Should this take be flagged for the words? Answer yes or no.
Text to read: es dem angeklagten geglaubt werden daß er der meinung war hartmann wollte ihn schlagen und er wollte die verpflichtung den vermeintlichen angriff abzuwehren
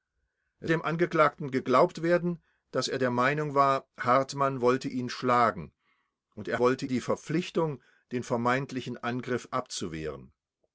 no